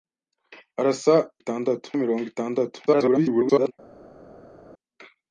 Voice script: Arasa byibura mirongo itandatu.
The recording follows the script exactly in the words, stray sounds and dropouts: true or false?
false